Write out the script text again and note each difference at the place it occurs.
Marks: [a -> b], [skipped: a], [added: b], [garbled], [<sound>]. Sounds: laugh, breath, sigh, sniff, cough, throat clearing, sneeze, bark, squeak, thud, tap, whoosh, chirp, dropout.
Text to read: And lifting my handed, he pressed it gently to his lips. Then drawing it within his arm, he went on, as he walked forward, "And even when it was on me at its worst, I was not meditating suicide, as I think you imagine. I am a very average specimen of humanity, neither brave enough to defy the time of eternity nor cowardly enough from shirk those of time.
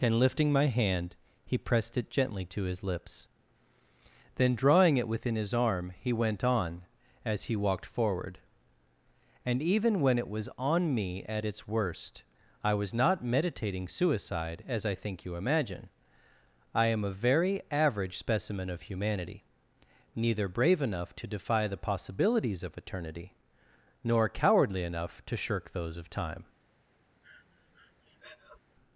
And lifting my [handed, -> hand] he pressed it gently to his lips. Then drawing it within his arm, he went on, as he walked forward, "And even when it was on me at its worst, I was not meditating suicide, as I think you imagine. I am a very average specimen of humanity, neither brave enough to defy the [time -> possibilities] of eternity nor cowardly enough [from -> to] shirk those of time. [breath]